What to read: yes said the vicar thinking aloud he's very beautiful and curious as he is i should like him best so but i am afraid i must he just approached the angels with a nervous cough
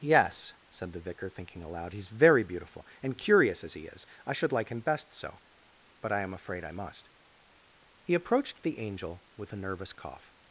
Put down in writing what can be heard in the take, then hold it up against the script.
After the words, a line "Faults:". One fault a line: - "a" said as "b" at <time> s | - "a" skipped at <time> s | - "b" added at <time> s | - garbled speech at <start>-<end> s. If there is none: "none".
yes said the vicar thinking aloud he's very beautiful and curious as he is i should like him best so but i am afraid i must he approached the angel with a nervous cough
Faults:
- "just" skipped at 8.2 s
- "angels" said as "angel" at 8.8 s